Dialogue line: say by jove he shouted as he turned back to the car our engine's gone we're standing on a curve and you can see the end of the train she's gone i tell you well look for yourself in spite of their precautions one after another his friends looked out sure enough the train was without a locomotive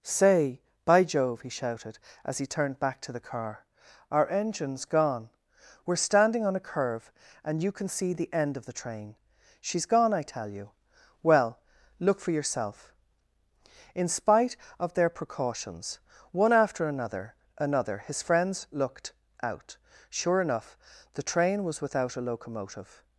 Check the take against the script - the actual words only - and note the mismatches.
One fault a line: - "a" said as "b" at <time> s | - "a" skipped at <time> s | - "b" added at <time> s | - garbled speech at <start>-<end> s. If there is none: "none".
- "another" added at 17.6 s